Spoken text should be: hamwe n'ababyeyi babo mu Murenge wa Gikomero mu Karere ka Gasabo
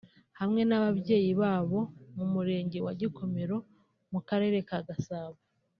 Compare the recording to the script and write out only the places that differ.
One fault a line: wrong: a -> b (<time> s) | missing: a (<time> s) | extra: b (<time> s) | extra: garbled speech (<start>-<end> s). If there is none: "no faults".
no faults